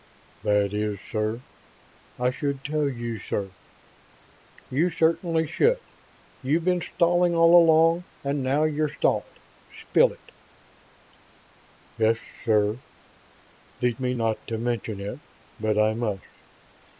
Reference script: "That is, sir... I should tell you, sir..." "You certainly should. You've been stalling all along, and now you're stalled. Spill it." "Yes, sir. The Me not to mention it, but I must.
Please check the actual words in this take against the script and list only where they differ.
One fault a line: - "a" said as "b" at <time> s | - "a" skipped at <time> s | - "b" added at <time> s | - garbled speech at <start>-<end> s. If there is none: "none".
none